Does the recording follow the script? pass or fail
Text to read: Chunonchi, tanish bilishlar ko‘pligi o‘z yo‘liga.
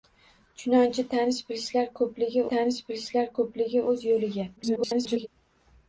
fail